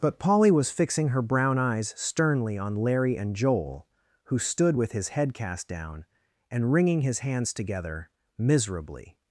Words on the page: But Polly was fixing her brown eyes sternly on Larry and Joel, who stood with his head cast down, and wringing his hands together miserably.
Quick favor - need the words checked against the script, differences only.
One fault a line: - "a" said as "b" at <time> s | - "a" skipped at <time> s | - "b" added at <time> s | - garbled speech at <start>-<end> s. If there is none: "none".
none